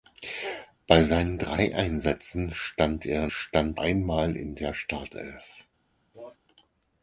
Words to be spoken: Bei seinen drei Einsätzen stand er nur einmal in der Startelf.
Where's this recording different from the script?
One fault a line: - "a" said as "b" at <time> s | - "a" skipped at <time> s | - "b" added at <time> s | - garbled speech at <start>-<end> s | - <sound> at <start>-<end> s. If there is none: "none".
- "nur" said as "stand" at 3.3 s
- cough at 6.1-6.4 s